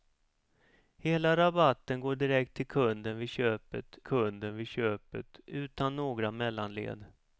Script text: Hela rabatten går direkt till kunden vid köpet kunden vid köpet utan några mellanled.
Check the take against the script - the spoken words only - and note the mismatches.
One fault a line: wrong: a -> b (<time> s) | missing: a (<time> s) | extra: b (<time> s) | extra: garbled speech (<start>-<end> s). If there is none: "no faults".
no faults